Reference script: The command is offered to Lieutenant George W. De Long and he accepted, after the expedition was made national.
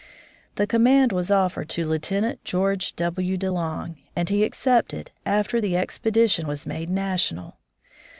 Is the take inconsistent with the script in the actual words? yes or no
yes